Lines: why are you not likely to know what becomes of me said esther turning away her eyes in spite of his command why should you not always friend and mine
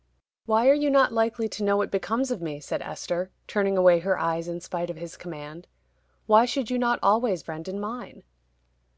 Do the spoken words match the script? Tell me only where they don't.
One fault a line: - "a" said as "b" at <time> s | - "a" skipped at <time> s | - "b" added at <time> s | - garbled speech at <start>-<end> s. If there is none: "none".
none